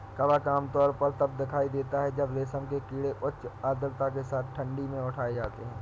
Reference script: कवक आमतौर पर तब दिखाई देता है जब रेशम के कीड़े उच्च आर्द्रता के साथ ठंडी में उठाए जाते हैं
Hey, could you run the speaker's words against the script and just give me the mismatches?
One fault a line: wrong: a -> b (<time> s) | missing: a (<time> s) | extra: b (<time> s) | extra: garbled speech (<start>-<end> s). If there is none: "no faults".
no faults